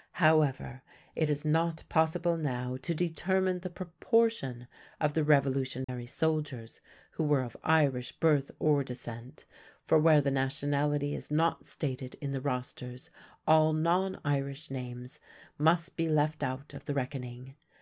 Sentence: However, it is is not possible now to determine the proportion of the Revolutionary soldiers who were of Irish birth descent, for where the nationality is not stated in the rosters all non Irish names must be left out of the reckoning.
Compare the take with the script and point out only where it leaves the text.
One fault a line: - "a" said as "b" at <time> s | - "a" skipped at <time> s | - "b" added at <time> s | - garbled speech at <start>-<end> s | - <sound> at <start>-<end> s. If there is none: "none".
- "is" skipped at 1.4 s
- dropout at 5.8-5.9 s
- "or" added at 8.6 s